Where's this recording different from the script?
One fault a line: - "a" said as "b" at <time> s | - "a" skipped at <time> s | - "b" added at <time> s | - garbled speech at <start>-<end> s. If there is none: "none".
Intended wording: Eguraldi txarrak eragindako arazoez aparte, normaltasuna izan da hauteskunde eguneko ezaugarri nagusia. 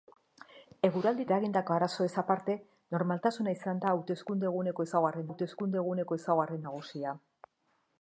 - "txarrak" skipped at 1.2 s
- "hauteskunde eguneko ezaugarri" added at 5.3 s